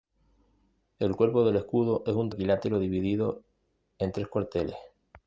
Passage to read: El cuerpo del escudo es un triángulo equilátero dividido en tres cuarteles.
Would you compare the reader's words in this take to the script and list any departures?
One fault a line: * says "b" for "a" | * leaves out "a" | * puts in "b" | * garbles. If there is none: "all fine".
* leaves out "triángulo"